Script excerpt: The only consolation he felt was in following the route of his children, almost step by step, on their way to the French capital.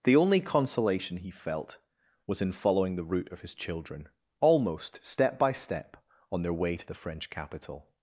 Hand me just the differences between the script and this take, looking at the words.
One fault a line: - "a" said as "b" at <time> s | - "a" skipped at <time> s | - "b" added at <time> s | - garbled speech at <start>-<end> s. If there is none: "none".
none